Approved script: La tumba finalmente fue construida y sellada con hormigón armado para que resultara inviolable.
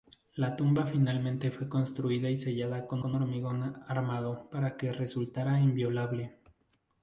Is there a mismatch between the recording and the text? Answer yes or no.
yes